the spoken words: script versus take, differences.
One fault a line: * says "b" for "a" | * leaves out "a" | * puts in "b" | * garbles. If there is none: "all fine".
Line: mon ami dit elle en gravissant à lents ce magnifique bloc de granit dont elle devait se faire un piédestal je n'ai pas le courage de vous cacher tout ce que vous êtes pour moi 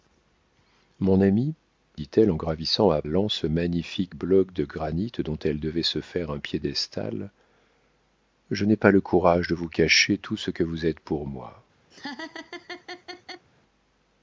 all fine